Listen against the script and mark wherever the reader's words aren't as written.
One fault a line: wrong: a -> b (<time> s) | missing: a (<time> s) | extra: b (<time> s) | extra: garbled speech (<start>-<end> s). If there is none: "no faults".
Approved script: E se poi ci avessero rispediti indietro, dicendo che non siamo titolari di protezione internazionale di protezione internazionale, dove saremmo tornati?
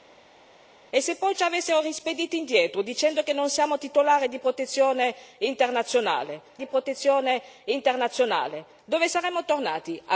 no faults